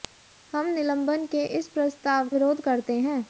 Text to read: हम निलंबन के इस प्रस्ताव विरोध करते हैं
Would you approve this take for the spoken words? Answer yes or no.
yes